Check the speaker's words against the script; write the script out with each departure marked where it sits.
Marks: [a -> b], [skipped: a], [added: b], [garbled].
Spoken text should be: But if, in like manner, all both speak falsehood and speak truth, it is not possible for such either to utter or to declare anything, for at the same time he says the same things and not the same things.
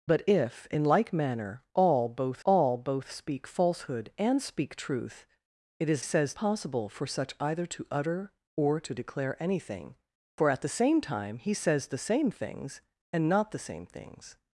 But if, in like manner, all both [added: all both] speak falsehood and speak truth, it is [not -> says] possible for such either to utter or to declare anything, for at the same time he says the same things and not the same things.